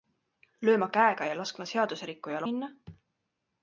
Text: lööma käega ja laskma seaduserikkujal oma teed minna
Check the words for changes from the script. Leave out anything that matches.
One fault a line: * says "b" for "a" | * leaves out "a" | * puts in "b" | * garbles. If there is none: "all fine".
* leaves out "oma teed"